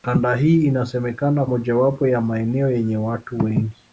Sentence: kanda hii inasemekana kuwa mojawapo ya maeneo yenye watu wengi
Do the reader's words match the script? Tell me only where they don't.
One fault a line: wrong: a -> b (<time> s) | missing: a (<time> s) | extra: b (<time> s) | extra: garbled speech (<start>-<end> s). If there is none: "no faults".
missing: kuwa (1.4 s)